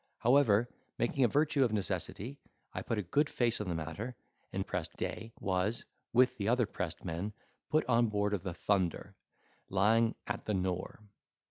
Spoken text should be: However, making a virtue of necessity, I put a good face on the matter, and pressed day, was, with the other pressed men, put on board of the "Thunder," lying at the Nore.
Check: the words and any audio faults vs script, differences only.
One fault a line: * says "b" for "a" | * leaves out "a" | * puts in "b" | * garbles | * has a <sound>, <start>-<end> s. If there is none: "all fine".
all fine